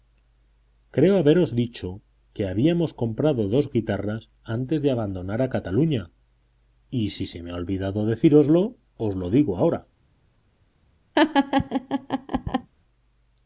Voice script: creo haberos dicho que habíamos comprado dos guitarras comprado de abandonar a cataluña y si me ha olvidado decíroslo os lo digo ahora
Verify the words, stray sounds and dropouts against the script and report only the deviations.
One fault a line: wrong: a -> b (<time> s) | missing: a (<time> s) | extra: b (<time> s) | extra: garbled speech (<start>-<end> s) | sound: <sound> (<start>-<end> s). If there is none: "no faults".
wrong: comprado -> antes (4.4 s)
extra: se (7.3 s)
sound: laugh (11.1-12.7 s)